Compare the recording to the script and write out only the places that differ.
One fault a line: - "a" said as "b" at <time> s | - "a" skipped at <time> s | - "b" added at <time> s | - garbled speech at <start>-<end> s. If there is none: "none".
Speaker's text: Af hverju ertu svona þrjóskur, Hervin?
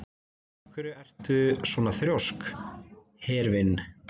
none